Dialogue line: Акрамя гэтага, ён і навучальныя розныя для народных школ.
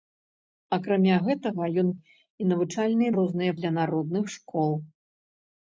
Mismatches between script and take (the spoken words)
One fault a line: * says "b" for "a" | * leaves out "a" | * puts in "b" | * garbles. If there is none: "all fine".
all fine